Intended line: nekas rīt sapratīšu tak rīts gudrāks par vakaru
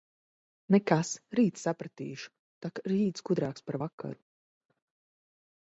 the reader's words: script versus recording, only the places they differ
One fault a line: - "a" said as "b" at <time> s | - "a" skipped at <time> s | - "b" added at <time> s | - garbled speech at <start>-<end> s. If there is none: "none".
none